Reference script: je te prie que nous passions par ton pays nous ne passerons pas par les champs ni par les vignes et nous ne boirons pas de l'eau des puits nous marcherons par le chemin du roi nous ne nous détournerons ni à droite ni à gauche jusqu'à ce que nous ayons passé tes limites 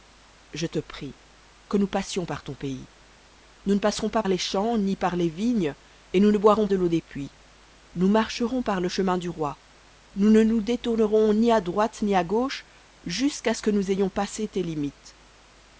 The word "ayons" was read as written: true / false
true